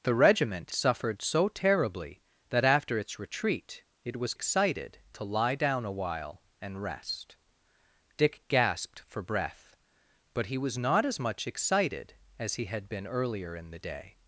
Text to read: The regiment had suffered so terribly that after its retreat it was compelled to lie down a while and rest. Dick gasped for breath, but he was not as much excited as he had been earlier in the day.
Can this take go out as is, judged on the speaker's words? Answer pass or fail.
fail